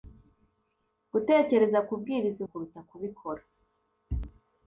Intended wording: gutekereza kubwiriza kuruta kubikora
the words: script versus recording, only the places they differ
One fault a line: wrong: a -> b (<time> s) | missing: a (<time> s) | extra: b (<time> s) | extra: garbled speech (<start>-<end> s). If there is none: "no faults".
no faults